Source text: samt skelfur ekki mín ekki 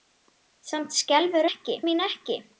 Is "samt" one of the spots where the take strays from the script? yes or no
no